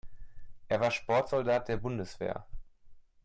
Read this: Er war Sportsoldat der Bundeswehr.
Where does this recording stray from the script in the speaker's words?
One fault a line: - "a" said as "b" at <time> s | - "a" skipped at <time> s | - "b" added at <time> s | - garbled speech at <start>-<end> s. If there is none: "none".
none